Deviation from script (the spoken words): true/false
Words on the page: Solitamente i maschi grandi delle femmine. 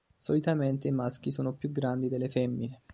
true